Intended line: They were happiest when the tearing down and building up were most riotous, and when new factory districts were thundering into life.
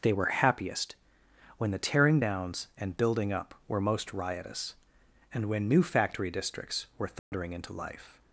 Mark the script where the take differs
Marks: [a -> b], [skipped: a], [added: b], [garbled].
They were happiest when the tearing [down -> downs] and building up were most riotous, and when new factory districts were thundering into life.